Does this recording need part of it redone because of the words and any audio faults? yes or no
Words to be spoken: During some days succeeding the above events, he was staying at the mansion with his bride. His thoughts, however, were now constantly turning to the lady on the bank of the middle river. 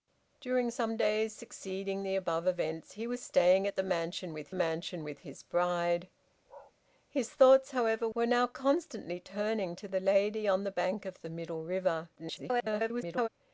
yes